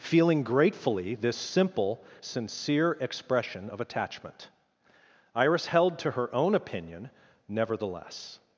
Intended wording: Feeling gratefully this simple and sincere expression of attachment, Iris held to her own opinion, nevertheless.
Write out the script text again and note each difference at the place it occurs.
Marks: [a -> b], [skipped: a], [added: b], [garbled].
Feeling gratefully this simple [skipped: and] sincere expression of attachment, Iris held to her own opinion, nevertheless.